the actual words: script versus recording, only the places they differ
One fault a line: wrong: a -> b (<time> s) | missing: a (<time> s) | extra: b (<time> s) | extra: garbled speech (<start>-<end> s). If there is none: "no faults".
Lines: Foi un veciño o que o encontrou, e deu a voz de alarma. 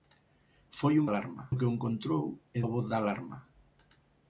wrong: veciño -> alarma (1.1 s)
missing: deu (2.6 s)